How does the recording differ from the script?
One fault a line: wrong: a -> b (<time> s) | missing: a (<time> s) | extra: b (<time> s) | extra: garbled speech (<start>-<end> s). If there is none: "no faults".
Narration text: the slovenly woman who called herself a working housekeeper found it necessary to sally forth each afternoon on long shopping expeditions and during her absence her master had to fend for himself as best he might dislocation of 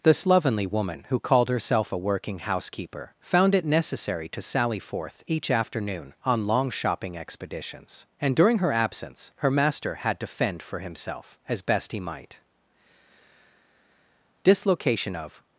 no faults